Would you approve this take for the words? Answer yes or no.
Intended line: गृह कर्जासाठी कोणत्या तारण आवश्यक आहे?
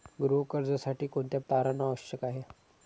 yes